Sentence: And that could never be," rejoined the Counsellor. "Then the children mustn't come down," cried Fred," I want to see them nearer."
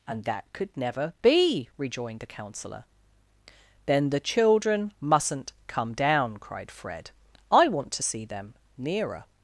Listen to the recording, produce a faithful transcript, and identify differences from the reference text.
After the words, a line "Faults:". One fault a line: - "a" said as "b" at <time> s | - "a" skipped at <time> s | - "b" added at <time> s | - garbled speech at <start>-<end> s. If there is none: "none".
And that could never be," rejoined the Counsellor. "Then the children mustn't come down," cried Fred," I want to see them nearer."
Faults:
none